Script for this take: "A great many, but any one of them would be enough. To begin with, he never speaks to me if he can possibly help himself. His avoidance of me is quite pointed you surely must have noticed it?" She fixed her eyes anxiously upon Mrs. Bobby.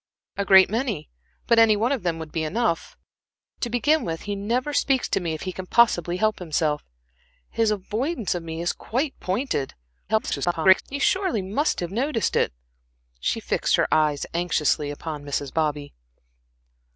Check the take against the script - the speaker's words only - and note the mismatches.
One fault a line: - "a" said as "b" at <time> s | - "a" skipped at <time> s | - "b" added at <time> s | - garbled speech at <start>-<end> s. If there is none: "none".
- garbled speech at 10.1-10.8 s